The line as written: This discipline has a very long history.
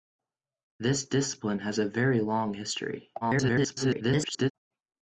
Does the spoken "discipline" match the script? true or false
true